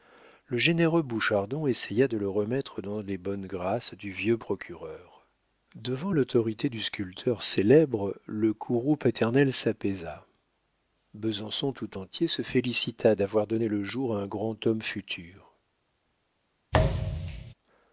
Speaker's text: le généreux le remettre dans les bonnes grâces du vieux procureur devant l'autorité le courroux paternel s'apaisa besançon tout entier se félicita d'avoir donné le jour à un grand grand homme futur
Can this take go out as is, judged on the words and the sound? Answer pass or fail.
fail